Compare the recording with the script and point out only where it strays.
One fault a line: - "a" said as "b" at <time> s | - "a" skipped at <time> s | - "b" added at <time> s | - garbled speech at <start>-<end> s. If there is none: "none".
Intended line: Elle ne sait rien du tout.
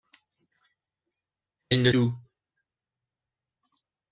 - "sait rien du" skipped at 1.9 s